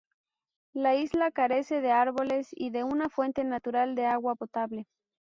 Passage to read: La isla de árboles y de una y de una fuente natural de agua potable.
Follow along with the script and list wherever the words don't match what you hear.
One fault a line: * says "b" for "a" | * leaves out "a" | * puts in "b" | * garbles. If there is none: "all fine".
* puts in "carece"
* leaves out "y de una"